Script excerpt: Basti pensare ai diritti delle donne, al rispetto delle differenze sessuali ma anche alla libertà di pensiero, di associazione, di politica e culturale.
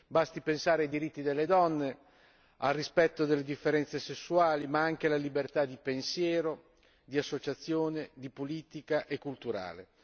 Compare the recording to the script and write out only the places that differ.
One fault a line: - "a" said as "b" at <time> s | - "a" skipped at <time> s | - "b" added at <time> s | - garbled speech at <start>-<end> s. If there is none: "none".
none